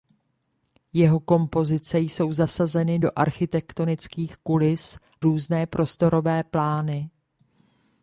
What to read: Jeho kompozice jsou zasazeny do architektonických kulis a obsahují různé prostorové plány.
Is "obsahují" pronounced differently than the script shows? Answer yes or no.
yes